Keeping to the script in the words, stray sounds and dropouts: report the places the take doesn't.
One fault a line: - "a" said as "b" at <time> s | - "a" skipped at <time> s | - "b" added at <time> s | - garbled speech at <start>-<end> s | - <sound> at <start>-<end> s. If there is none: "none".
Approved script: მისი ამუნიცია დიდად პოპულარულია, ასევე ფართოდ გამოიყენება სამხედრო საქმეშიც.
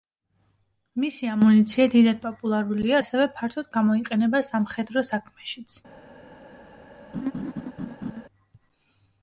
- laugh at 7.1-8.2 s